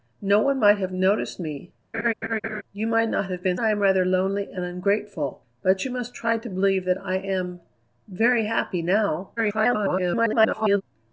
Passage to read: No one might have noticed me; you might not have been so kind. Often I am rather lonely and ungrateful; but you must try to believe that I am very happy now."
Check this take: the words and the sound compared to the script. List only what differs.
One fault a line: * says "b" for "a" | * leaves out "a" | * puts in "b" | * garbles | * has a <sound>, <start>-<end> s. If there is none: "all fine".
* has a laugh, 1.9-2.6 s
* leaves out "so kind Often"
* garbles